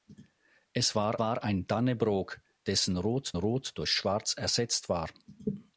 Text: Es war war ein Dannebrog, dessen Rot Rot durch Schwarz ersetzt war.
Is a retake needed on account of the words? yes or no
no